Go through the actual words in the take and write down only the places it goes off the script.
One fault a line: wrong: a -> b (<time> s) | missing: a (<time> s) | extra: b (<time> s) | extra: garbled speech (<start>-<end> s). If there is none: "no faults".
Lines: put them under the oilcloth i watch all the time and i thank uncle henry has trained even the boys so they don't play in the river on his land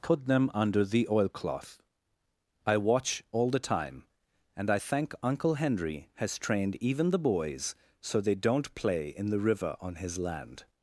no faults